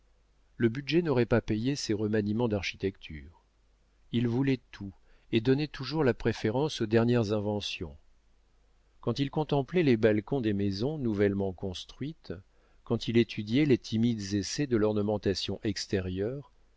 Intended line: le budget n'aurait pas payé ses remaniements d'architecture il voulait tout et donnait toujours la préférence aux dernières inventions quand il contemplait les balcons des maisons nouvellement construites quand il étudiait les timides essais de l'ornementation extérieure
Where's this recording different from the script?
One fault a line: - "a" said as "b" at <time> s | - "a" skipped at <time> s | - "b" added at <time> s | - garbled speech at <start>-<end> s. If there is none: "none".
none